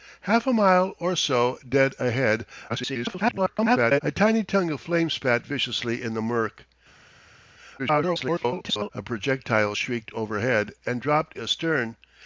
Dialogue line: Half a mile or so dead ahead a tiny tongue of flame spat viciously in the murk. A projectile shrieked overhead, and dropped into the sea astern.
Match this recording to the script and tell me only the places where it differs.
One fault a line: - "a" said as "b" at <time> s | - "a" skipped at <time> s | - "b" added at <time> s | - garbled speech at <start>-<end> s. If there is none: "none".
- garbled speech at 2.7-4.0 s
- garbled speech at 7.8-8.9 s
- "into the sea" skipped at 11.4 s